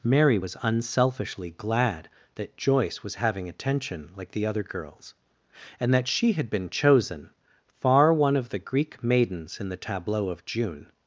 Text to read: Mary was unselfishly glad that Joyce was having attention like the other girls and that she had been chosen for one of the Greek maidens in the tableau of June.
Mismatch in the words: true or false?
true